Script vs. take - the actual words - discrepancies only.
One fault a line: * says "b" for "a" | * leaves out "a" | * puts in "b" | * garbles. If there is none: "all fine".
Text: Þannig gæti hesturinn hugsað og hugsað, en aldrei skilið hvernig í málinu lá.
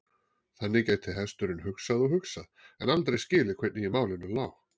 all fine